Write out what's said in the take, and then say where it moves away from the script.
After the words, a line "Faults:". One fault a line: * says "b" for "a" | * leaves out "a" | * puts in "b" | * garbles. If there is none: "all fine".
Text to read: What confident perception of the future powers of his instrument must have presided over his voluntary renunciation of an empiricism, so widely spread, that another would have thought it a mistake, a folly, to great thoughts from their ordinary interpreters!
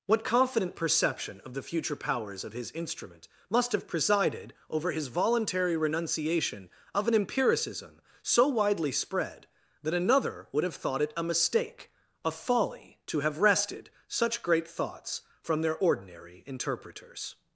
What confident perception of the future powers of his instrument must have presided over his voluntary renunciation of an empiricism, so widely spread, that another would have thought it a mistake, a folly, to have wrested such great thoughts from their ordinary interpreters!
Faults:
* puts in "have wrested such"